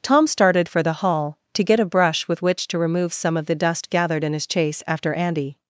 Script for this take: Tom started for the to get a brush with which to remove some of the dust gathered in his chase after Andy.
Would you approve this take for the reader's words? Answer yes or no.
no